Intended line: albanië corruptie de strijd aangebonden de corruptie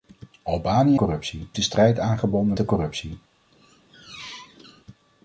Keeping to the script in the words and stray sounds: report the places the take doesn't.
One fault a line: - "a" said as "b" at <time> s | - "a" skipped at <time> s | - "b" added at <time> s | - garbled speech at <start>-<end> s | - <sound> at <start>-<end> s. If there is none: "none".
- squeak at 3.5-4.8 s